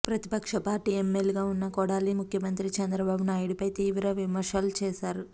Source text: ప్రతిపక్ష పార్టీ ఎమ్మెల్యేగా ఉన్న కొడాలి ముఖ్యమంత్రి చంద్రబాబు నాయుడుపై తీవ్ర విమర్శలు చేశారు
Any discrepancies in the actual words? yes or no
no